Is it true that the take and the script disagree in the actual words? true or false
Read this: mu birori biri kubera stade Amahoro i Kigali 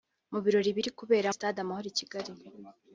false